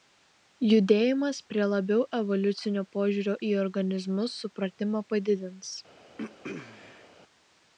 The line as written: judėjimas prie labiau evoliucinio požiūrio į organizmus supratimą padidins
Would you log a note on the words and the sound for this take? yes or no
yes